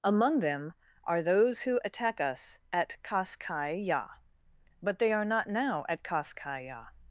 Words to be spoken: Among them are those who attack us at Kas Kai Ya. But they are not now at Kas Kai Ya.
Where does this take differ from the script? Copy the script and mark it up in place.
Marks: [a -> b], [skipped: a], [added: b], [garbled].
Among them are those who attack us at Kas Kai Ya. But they are not now at Kas Kai Ya.